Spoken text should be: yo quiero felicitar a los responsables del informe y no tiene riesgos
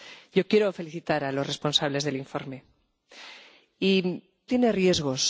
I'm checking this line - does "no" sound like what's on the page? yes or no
no